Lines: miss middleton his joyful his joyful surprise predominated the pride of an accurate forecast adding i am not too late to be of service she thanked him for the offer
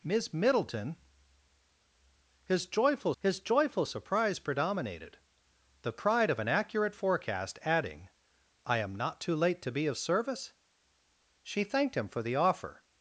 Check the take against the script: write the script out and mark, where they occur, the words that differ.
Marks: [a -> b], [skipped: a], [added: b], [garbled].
miss middleton his joyful his joyful surprise predominated the pride of an accurate forecast adding i am not too late to be of service she thanked him for the offer